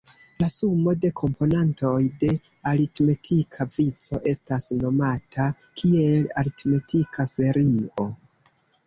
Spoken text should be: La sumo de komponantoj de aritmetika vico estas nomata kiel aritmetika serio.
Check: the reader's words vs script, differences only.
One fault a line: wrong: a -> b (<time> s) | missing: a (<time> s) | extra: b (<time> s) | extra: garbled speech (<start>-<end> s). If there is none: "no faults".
no faults